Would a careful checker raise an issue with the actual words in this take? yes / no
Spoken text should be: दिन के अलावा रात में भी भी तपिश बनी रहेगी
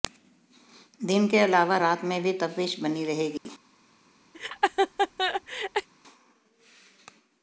yes